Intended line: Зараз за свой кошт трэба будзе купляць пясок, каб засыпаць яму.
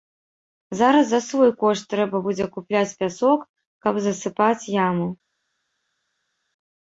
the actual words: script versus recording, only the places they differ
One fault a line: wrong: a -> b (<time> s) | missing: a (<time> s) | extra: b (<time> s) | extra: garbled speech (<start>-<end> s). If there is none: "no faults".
no faults